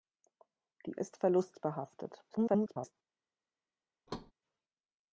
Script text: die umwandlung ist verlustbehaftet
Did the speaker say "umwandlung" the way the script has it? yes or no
no